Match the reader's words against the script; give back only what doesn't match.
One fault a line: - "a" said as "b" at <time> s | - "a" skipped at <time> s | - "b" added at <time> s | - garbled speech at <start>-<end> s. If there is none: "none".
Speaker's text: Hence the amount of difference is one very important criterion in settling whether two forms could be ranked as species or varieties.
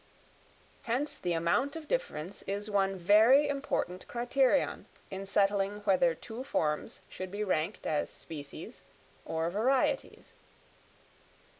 - "could" said as "should" at 7.1 s